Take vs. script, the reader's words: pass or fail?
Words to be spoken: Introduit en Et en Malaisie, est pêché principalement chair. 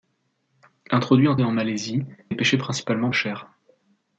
pass